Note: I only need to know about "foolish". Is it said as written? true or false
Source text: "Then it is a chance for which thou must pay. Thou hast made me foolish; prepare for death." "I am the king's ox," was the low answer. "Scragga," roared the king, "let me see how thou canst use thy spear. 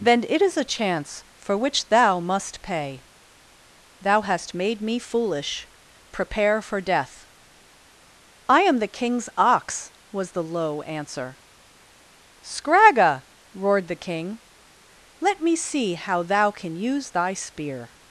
true